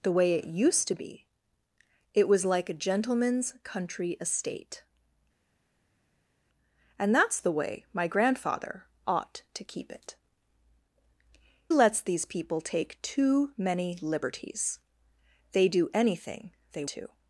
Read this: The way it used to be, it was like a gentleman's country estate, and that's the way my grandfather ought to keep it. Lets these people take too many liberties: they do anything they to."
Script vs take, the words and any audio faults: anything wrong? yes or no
no